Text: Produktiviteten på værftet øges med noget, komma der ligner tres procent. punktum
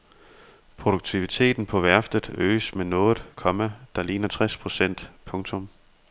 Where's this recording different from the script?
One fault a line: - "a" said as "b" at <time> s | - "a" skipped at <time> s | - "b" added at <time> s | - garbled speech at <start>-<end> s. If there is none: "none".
none